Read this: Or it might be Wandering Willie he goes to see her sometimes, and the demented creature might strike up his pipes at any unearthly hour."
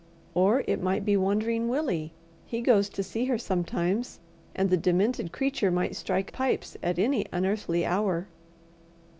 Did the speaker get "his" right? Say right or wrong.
wrong